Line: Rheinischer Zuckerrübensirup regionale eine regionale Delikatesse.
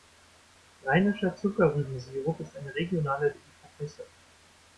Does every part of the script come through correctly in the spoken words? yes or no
no